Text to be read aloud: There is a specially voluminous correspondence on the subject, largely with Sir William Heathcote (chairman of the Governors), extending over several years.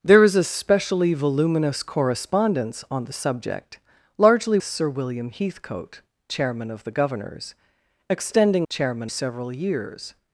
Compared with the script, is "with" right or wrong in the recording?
wrong